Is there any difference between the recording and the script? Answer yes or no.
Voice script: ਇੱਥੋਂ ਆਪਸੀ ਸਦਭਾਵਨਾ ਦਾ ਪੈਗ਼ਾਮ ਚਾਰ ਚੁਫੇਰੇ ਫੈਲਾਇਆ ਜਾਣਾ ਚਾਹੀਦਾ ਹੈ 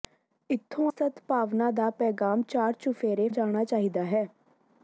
yes